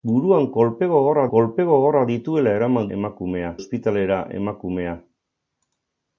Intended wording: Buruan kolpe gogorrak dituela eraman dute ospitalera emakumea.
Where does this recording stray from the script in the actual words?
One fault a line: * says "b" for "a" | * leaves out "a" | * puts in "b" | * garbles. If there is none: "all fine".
* puts in "kolpe gogorrak"
* says "emakumea" for "dute"